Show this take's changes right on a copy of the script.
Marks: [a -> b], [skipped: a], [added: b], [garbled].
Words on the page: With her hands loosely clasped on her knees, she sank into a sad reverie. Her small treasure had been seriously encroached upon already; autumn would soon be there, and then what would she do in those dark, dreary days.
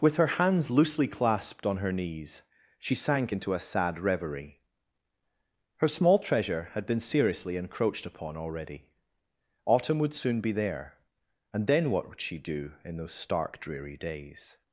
With her hands loosely clasped on her knees, she sank into a sad reverie. Her small treasure had been seriously encroached upon already; autumn would soon be there, and then what would she do in those [dark, -> stark] dreary days.